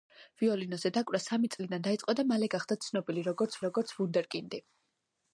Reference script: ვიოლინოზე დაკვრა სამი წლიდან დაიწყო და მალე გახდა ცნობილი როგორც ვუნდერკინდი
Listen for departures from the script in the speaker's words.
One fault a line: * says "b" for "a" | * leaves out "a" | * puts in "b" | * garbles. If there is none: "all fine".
* puts in "როგორც"